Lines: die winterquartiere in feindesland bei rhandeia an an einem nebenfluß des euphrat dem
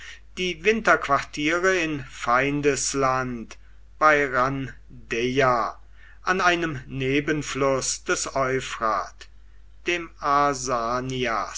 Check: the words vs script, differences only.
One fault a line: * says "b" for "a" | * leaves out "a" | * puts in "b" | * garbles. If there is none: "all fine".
* leaves out "an"